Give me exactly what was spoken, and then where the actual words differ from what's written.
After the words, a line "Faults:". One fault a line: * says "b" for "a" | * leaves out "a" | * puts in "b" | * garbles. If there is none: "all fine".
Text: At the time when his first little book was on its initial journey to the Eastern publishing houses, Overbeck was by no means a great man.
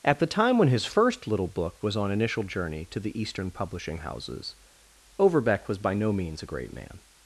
At the time when his first little book was on initial journey to the Eastern publishing houses, Overbeck was by no means a great man.
Faults:
* leaves out "its"